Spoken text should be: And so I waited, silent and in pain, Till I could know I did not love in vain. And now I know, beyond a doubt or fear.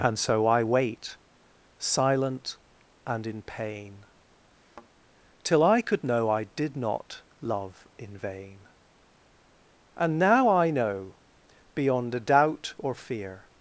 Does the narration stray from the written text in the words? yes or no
yes